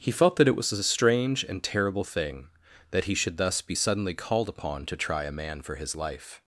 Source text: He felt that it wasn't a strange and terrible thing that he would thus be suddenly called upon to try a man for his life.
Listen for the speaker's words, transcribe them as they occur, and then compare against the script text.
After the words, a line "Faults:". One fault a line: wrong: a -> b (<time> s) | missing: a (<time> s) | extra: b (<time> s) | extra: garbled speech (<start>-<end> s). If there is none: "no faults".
He felt that it was a strange and terrible thing that he should thus be suddenly called upon to try a man for his life.
Faults:
wrong: wasn't -> was (0.6 s)
wrong: would -> should (3.1 s)